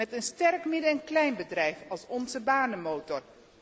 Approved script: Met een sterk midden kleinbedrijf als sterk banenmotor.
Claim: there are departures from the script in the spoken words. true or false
true